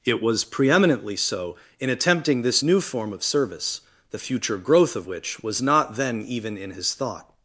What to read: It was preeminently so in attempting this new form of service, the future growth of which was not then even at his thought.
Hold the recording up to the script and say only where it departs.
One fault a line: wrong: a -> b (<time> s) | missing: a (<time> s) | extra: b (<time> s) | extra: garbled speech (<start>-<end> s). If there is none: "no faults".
wrong: at -> in (6.6 s)